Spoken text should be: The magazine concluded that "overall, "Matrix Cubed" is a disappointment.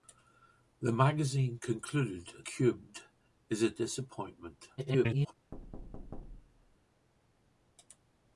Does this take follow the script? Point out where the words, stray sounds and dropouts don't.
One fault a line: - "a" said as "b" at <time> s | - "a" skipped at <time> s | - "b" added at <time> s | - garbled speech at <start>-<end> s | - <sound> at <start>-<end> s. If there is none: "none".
- "that overall Matrix" skipped at 2.5 s
- garbled speech at 4.8-5.4 s
- thud at 5.5-6.8 s